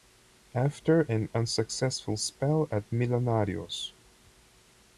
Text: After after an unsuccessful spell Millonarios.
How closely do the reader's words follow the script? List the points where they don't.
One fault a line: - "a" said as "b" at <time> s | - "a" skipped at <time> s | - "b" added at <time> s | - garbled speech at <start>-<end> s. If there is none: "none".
- "after" skipped at 1.0 s
- "at" added at 2.7 s